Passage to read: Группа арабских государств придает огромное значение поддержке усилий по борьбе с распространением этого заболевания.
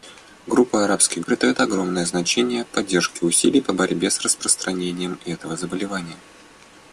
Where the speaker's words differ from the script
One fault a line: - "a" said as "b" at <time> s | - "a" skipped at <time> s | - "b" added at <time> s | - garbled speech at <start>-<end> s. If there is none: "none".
- "государств" skipped at 1.2 s